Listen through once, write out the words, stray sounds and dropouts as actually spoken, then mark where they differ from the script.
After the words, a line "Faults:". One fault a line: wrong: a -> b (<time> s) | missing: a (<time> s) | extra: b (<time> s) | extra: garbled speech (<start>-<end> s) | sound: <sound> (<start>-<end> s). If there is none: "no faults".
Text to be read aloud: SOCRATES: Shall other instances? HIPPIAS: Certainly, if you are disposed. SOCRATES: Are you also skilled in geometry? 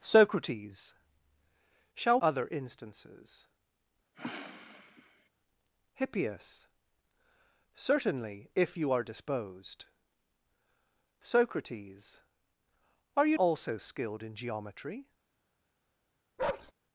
SOCRATES: Shall other instances? HIPPIAS: Certainly, if you are disposed. SOCRATES: Are you also skilled in geometry?
Faults:
sound: sniff (4.1-5.3 s)
sound: bark (16.4-16.7 s)